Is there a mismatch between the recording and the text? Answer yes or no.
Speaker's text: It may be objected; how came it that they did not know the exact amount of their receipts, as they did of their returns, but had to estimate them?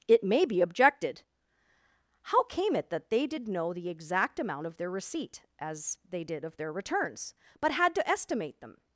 yes